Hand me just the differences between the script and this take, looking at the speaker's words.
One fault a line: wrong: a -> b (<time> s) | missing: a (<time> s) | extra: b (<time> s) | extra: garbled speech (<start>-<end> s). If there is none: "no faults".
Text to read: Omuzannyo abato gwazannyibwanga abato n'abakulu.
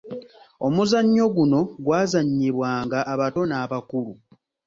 wrong: abato -> guno (1.4 s)